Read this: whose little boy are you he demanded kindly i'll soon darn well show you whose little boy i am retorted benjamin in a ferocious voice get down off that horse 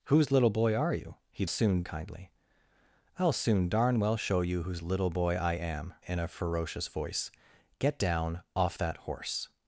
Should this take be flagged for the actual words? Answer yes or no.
yes